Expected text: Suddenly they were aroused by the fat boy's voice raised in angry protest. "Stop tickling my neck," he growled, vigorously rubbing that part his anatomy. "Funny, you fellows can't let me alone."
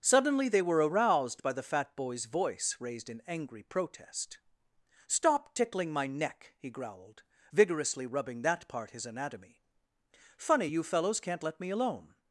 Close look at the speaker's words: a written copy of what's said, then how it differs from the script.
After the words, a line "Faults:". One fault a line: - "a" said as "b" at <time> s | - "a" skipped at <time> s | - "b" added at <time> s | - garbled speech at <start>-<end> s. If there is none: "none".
Suddenly they were aroused by the fat boy's voice raised in angry protest. "Stop tickling my neck," he growled, vigorously rubbing that part his anatomy. "Funny, you fellows can't let me alone."
Faults:
none